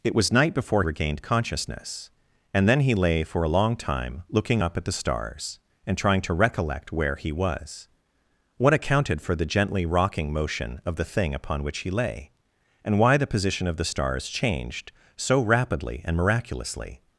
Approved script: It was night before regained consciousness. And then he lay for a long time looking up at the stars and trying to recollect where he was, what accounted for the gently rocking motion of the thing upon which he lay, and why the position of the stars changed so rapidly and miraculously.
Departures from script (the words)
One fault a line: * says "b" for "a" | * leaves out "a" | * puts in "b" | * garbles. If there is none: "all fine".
all fine